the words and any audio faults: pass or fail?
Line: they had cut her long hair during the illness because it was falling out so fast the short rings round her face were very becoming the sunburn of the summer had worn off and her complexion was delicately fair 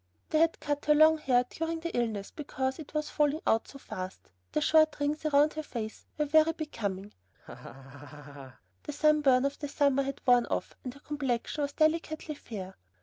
fail